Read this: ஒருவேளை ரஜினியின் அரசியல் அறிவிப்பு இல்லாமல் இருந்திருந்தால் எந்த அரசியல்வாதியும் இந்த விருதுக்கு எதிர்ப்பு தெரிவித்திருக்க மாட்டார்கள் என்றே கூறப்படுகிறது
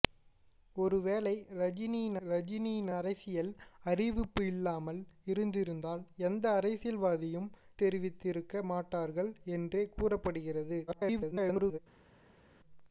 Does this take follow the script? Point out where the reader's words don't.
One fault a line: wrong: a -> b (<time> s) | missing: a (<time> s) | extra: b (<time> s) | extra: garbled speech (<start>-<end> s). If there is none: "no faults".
extra: ரஜினியின் (2.3 s)
missing: இந்த விருதுக்கு எதிர்ப்பு (7.5 s)
extra: garbled speech (10.9-11.8 s)